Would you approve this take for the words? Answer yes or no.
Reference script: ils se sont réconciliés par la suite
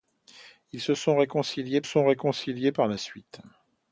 no